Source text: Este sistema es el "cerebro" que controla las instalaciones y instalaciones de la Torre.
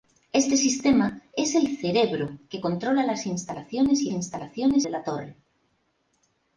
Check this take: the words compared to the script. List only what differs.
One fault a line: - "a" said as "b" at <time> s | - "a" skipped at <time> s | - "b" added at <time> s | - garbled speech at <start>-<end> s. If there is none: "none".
none